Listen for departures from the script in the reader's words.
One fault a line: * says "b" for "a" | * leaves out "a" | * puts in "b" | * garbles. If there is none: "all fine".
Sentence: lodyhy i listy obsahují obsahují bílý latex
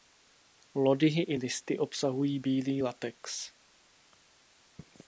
* leaves out "obsahují"